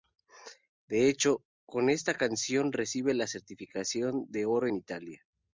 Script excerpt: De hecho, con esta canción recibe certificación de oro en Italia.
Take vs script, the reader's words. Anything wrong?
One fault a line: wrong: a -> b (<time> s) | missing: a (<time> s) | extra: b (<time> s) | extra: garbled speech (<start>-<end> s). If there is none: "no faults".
extra: la (3.1 s)